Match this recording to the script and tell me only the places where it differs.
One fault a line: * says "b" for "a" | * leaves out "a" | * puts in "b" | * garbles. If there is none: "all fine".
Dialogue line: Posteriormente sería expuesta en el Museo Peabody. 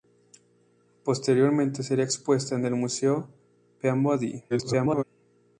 * garbles